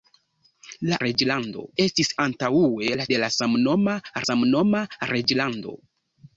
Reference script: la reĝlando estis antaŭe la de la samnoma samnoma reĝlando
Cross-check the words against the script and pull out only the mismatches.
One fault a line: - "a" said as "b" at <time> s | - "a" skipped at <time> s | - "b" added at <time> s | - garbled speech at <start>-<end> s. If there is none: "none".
none